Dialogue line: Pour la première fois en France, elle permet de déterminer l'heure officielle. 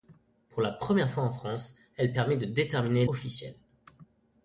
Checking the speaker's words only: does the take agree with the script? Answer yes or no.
no